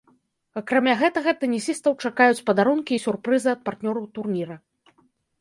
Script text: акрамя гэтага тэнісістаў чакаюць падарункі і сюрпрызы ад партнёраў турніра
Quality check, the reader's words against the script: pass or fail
pass